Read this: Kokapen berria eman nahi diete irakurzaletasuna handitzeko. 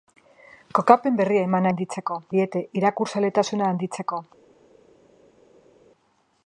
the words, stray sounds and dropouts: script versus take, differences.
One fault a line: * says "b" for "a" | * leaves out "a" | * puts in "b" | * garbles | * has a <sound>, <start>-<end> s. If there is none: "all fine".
* says "handitzeko" for "nahi"